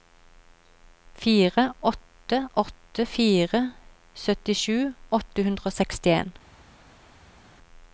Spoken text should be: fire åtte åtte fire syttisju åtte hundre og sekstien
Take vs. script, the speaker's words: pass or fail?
pass